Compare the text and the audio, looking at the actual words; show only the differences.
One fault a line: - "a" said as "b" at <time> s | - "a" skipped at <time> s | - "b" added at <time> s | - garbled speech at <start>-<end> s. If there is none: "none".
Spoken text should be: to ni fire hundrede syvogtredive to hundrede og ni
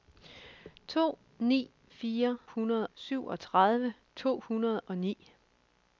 none